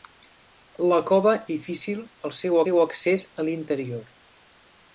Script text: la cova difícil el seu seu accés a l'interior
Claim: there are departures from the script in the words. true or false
false